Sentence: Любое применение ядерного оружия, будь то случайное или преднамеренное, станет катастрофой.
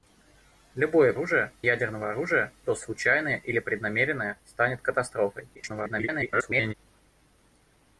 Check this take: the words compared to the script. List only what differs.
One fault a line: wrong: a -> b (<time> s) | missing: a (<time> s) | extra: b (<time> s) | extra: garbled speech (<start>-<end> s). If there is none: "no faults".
wrong: применение -> оружия (1.1 s)
missing: будь (2.5 s)
extra: garbled speech (5.6-6.7 s)